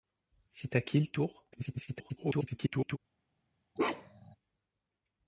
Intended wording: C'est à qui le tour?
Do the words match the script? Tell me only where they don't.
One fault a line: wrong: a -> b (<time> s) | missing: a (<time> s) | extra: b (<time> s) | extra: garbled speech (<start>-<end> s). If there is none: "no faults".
extra: garbled speech (1.5-3.0 s)